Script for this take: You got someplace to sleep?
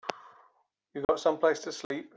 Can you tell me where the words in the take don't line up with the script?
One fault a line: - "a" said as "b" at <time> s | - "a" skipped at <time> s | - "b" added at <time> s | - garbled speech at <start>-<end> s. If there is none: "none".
none